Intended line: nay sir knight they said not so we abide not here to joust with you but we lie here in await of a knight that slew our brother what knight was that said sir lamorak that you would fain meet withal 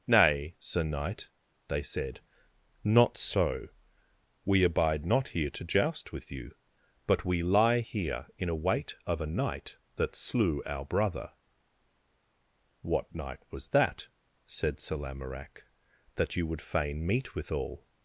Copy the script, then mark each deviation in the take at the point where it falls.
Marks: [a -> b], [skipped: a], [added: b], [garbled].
nay sir knight they said not so we abide not here to joust with you but we lie here in await of a knight that slew our brother what knight was that said sir lamorak that you would fain meet withal